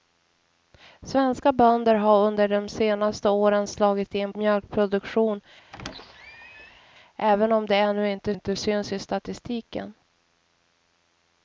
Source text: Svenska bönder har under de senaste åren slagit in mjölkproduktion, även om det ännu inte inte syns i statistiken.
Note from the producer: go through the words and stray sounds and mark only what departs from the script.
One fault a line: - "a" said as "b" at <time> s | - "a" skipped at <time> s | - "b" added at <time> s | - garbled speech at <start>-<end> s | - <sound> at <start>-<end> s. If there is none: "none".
- squeak at 5.7-6.8 s